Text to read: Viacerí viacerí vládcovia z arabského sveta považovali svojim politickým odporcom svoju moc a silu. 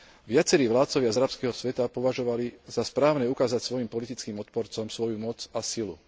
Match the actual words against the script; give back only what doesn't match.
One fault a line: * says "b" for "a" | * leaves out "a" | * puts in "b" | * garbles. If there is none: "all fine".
* leaves out "viacerí"
* puts in "za správne ukázať"